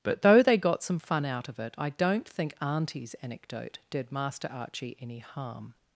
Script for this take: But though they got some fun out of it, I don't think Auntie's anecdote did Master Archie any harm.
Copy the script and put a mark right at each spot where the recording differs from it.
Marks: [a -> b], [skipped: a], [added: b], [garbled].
But though they got some fun out of it, I don't think Auntie's anecdote did Master Archie any harm.